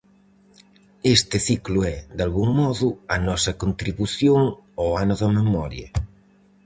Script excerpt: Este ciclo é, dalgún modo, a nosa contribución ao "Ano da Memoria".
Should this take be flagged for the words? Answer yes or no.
no